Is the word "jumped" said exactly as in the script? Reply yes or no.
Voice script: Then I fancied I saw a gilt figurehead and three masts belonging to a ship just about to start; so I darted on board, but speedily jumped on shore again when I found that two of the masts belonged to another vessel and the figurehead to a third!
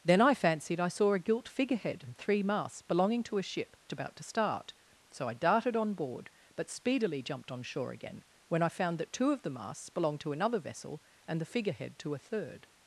yes